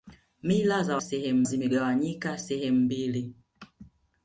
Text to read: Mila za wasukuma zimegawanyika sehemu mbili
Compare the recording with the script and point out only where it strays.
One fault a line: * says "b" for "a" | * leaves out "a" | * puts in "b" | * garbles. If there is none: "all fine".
* says "sehemu" for "wasukuma"